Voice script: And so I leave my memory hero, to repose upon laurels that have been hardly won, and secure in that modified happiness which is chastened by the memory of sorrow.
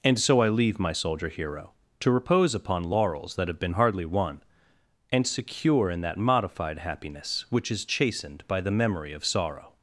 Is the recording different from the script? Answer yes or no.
yes